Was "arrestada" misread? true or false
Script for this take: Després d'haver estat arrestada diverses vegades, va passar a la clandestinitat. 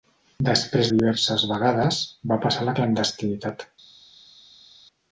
true